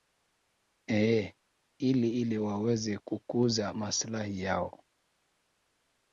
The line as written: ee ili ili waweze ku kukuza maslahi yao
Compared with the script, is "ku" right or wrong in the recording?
wrong